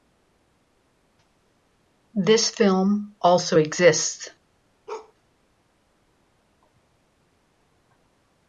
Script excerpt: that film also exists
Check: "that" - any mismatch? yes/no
yes